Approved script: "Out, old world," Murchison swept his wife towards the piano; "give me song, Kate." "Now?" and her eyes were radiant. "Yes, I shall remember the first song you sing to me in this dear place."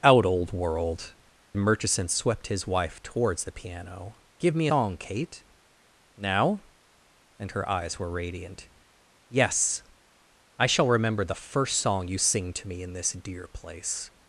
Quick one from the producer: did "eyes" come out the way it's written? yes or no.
yes